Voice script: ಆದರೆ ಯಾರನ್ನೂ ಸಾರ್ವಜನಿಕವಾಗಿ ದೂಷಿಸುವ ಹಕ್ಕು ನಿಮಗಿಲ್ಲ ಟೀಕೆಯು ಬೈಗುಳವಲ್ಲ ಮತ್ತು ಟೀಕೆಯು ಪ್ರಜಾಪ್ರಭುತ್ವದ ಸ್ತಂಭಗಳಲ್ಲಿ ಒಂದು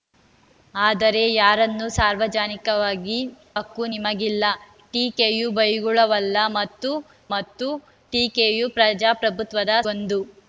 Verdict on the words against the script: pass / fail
fail